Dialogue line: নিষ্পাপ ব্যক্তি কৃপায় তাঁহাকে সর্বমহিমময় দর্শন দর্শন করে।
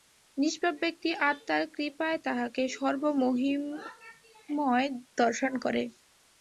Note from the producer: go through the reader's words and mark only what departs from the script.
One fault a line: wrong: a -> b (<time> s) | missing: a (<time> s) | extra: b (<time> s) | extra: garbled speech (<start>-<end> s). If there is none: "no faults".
extra: আত্মার (1.3 s)
missing: দর্শন (5.5 s)